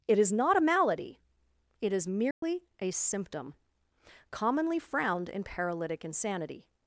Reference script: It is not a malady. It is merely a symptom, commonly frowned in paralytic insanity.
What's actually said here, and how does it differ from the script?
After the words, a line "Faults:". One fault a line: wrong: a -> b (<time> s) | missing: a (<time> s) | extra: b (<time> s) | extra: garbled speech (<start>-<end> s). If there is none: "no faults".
It is not a malady. It is merely a symptom, commonly frowned in paralytic insanity.
Faults:
no faults